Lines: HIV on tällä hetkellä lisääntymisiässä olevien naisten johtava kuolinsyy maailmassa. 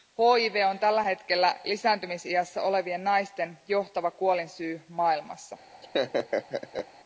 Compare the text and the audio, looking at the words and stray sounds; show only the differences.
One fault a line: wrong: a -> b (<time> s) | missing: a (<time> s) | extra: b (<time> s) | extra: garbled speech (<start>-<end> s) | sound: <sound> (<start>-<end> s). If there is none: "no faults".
sound: laugh (5.8-6.9 s)